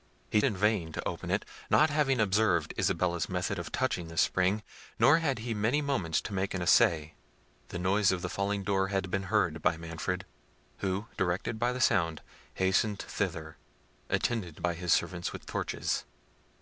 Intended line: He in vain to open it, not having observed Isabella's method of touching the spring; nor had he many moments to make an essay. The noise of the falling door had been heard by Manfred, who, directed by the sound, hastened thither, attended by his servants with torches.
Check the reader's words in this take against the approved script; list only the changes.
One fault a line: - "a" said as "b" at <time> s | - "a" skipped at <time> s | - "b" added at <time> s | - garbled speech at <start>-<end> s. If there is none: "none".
none